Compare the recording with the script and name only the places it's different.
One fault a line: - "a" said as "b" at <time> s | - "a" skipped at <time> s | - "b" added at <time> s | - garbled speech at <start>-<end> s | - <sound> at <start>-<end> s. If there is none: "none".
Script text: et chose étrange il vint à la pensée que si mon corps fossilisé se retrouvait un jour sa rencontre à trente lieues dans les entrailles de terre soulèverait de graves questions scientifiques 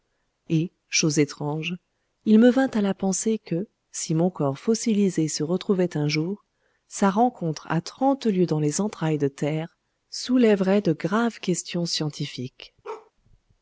- "me" added at 2.4 s
- bark at 12.8-13.1 s